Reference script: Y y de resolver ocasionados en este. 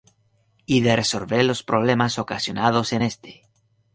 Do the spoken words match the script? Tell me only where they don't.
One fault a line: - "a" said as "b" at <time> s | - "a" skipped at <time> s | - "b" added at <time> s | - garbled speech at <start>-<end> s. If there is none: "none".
- "y" skipped at 0.8 s
- "los problemas" added at 1.4 s